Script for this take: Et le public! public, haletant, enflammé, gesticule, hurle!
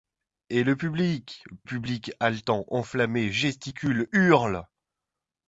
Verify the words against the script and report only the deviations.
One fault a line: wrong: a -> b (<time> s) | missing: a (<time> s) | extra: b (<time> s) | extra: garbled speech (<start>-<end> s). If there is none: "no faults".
no faults